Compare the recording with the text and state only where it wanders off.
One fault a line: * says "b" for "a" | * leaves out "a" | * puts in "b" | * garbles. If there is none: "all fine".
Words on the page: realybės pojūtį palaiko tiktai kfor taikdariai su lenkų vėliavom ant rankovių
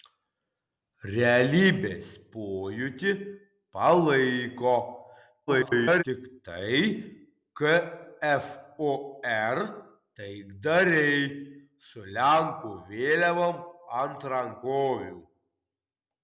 * garbles